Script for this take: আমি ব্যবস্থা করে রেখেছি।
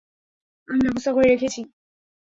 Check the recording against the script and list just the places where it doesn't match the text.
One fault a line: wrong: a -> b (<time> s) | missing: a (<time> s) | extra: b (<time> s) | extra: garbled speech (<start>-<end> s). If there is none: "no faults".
no faults